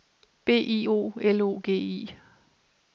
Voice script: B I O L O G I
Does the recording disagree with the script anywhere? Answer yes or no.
no